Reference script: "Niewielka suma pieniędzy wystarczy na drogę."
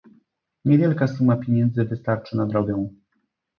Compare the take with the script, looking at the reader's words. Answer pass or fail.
pass